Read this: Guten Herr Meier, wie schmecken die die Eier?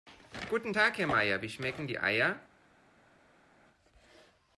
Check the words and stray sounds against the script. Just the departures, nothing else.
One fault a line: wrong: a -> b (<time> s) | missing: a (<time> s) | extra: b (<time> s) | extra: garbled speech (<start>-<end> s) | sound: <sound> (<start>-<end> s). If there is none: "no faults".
extra: Tag (0.7 s)
missing: die (2.0 s)